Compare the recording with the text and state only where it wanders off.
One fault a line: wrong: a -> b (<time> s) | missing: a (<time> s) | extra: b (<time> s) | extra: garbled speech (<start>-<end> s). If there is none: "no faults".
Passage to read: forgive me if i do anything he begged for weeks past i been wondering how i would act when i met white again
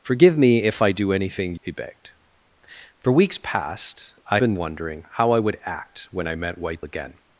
no faults